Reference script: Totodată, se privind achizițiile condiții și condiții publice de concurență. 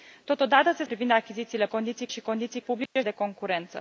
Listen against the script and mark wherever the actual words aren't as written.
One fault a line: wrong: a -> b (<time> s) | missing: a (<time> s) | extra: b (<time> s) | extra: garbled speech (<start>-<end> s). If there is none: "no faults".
no faults